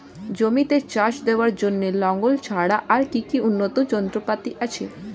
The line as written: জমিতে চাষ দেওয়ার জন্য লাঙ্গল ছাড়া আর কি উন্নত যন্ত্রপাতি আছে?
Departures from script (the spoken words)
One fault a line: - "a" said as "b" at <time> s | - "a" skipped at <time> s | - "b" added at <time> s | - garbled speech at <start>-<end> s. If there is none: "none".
none